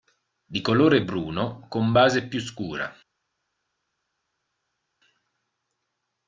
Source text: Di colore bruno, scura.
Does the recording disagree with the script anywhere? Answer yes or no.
yes